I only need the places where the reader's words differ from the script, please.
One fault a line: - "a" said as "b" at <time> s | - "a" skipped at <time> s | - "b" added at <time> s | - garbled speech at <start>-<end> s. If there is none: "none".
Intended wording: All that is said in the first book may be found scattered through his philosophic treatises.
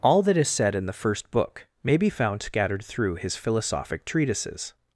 none